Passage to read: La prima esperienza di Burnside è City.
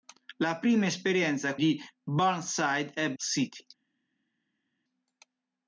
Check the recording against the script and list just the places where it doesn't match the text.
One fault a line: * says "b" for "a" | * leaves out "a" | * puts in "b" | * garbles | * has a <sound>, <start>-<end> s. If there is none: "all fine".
all fine